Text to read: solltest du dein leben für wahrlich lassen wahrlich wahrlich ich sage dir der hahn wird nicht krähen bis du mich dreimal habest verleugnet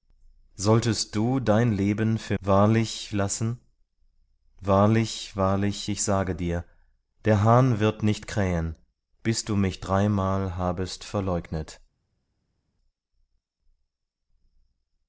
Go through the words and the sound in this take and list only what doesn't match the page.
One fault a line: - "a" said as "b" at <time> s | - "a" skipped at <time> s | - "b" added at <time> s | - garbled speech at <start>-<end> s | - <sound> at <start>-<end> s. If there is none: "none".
none